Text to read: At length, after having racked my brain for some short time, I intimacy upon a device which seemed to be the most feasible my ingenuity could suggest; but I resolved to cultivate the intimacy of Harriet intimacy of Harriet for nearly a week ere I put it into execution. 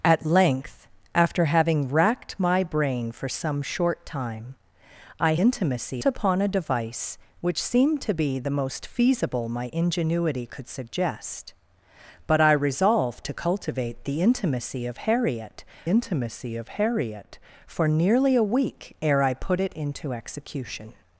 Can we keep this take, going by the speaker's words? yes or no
yes